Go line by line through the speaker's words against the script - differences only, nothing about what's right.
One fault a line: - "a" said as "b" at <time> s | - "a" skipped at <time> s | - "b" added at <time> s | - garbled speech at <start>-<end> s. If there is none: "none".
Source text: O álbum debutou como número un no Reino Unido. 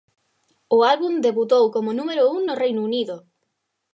none